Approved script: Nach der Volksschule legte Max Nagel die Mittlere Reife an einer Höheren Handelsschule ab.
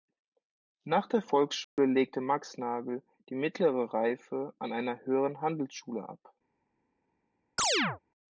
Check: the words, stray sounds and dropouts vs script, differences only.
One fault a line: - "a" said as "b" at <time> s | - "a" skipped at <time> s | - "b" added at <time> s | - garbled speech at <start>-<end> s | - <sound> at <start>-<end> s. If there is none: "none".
- dropout at 1.6-1.8 s
- chirp at 7.6-8.0 s